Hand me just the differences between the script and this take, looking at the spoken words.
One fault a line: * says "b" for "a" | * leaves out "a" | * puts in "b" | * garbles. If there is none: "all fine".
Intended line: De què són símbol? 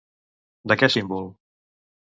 * leaves out "són"